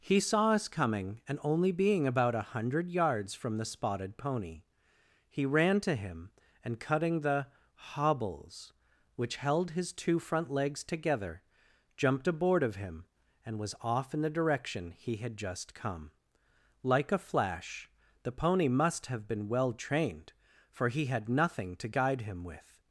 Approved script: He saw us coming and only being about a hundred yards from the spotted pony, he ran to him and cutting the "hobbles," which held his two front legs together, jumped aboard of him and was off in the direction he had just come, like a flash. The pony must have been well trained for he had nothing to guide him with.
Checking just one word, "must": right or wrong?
right